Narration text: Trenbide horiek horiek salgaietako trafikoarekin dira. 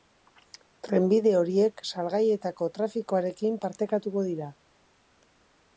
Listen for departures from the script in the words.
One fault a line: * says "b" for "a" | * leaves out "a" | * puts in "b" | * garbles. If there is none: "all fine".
* leaves out "horiek"
* puts in "partekatuko"